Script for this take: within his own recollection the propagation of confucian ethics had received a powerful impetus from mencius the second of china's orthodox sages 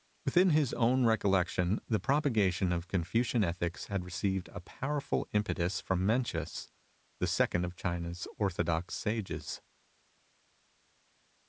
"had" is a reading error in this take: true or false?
false